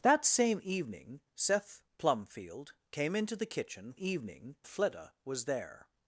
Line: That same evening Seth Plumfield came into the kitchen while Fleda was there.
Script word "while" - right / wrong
wrong